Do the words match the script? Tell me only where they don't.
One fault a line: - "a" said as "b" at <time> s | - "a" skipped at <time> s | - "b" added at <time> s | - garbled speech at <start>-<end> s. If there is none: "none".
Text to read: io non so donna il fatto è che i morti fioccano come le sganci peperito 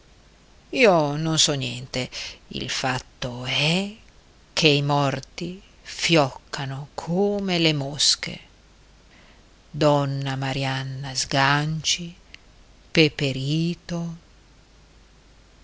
- "donna" said as "niente" at 1.5 s
- "mosche donna marianna" added at 7.7 s